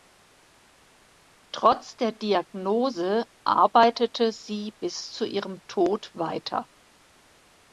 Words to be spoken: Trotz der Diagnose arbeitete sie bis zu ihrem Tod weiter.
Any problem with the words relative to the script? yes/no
no